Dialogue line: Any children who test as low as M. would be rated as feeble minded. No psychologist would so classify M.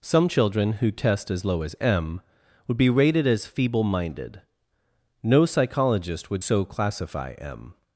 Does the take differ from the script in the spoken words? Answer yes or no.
yes